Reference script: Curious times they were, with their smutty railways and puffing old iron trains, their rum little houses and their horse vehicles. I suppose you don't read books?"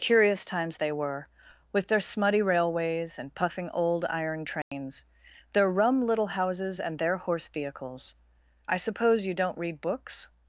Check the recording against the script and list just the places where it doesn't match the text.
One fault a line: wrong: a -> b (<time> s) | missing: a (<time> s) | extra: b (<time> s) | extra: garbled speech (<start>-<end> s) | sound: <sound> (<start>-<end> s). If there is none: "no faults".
sound: dropout (4.6-4.7 s)